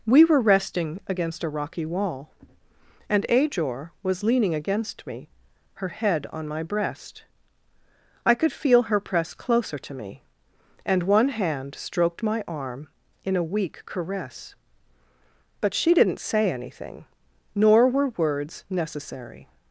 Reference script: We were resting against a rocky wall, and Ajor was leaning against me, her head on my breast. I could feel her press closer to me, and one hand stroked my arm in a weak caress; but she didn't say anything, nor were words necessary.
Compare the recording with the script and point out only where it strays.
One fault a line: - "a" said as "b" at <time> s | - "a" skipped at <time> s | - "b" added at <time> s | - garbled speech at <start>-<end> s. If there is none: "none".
none